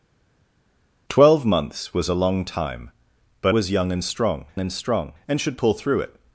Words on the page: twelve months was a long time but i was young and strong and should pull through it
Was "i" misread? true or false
true